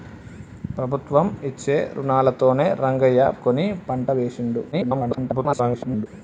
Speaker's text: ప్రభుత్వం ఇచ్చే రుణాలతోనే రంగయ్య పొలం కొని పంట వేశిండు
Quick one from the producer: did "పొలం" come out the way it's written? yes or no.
no